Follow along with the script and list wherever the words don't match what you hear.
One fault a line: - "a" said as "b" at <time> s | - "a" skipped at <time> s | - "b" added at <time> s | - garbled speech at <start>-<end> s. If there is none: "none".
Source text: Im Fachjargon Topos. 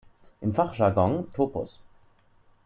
none